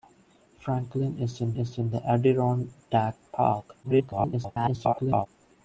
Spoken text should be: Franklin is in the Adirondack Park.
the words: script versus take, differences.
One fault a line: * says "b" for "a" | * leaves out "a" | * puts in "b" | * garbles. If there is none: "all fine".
* puts in "is in"
* garbles